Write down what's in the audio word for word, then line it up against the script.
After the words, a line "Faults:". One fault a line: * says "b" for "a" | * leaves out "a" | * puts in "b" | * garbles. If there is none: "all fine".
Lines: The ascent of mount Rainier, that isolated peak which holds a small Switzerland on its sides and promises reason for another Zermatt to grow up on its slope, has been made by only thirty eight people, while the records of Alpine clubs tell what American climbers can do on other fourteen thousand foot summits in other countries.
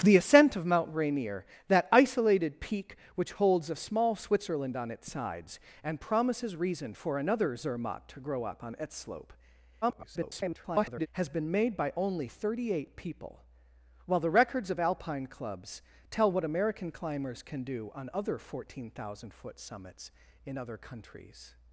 The ascent of mount Rainier, that isolated peak which holds a small Switzerland on its sides and promises reason for another Zermatt to grow up on its slope, [garbled] has been made by only thirty eight people, while the records of Alpine clubs tell what American climbers can do on other fourteen thousand foot summits in other countries.
Faults:
* garbles